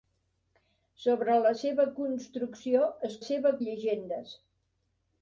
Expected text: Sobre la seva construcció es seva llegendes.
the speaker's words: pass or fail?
pass